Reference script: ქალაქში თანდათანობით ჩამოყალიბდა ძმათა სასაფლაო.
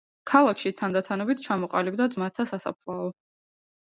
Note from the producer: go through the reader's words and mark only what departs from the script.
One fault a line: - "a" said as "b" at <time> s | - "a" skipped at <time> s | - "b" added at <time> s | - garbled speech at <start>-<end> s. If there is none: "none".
none